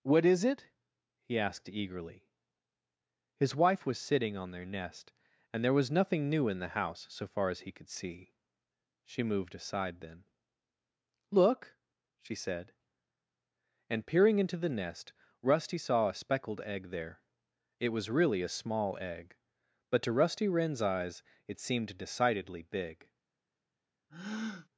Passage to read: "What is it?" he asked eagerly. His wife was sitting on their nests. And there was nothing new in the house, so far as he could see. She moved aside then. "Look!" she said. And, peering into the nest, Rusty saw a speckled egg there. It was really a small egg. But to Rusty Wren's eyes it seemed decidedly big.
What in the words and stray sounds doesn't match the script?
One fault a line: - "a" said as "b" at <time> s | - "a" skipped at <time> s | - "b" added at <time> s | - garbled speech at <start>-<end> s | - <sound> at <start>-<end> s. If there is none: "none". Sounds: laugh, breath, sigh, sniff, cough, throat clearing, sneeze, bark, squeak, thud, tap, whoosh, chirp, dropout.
- "nests" said as "nest" at 4.7 s
- breath at 24.1-24.7 s